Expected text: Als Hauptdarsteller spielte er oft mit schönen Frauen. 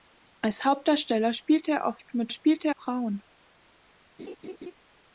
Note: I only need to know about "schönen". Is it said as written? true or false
false